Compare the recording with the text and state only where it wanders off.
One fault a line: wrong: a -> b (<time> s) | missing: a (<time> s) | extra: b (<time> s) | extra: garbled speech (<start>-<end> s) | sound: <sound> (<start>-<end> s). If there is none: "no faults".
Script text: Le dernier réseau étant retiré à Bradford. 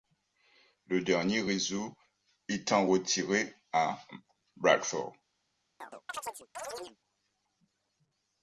sound: chirp (5.8-7.0 s)